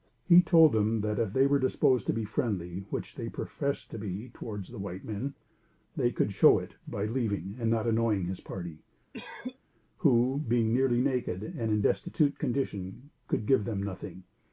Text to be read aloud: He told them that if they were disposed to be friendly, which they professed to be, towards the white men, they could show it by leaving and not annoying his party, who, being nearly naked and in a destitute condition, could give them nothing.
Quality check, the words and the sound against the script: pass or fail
fail